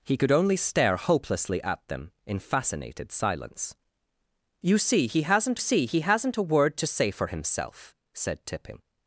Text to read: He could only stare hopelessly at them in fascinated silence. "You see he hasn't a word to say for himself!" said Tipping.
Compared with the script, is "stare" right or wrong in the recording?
right